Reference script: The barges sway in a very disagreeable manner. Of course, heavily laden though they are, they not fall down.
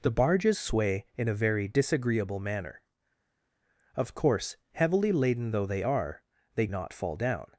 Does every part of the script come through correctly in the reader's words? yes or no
yes